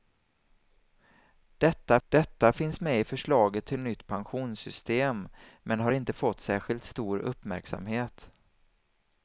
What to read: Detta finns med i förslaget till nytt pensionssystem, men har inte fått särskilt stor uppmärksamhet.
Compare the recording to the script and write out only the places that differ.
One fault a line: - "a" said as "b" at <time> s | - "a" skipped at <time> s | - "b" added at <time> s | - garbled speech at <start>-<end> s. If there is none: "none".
- "detta" added at 2.1 s